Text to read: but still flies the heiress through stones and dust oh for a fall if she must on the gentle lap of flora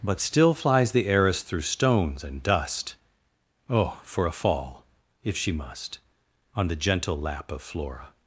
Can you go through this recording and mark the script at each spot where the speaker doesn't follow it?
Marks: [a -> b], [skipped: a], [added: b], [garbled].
but still flies the heiress through stones and dust oh for a fall if she must on the gentle lap of flora